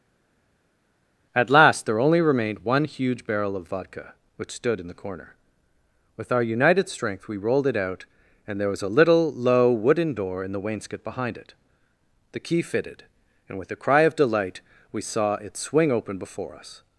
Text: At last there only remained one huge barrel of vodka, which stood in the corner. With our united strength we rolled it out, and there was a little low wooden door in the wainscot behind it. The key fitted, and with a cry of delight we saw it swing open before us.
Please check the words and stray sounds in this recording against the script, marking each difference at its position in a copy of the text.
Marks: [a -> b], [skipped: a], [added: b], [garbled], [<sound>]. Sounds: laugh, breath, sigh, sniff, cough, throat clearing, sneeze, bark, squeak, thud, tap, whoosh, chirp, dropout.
At last there only remained one huge barrel of vodka, which stood in the corner. With our united strength we rolled it out, and there was a little low wooden door in the wainscot behind it. The key fitted, and with a cry of delight we saw it swing open before us.